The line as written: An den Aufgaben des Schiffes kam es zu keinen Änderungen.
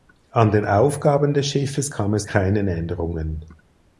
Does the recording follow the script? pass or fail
fail